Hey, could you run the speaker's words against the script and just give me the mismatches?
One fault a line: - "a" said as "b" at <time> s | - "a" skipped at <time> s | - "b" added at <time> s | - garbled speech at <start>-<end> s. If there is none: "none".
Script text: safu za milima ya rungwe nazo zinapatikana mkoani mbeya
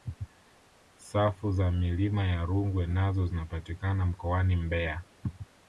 none